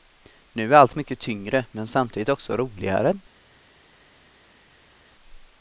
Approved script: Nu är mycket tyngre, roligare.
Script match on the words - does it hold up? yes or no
no